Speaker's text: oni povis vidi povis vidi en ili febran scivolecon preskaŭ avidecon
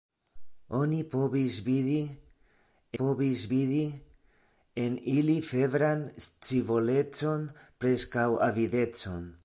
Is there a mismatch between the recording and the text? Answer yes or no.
no